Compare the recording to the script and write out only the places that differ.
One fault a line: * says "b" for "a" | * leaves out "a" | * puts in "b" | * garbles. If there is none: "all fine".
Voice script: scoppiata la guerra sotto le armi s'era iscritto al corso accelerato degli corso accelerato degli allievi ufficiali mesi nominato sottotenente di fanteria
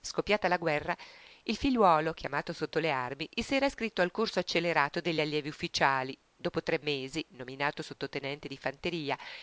* puts in "il figliuolo chiamato"
* says "allievi ufficiali dopo tre" for "corso accelerato degli allievi ufficiali"